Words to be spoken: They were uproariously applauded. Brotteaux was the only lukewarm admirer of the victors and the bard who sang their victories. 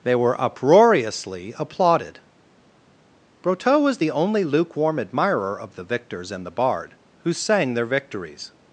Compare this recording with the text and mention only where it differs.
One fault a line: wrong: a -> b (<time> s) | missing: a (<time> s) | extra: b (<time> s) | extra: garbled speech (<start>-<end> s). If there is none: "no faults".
no faults